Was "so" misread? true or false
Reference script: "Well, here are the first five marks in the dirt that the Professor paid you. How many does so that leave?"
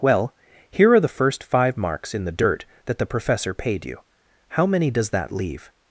true